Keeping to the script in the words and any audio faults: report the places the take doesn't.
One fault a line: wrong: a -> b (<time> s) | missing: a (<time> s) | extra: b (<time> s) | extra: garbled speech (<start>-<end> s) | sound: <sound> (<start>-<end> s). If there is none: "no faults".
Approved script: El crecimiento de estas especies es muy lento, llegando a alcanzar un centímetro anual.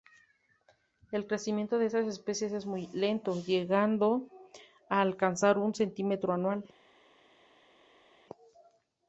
no faults